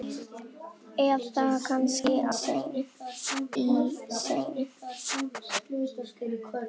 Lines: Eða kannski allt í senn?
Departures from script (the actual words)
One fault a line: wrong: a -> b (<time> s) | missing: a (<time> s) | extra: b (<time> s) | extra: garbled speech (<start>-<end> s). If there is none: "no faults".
wrong: allt -> senn (2.4 s)